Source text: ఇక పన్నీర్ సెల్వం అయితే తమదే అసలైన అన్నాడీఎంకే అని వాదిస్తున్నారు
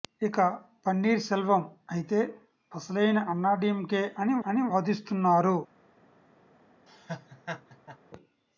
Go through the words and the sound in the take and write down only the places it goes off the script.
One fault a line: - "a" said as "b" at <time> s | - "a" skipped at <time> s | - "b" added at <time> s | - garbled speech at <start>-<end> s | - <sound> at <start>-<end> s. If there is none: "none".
- "తమదే" skipped at 2.2 s
- "అని" added at 4.5 s
- laugh at 6.9-8.0 s